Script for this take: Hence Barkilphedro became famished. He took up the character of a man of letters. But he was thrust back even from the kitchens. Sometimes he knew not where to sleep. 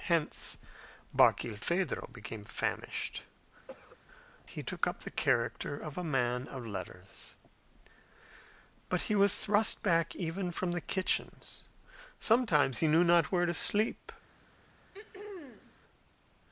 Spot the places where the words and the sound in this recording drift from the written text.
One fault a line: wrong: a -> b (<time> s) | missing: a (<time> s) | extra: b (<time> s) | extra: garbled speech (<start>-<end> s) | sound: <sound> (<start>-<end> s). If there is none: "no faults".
sound: cough (3.7-4.0 s)
sound: throat clearing (14.9-15.8 s)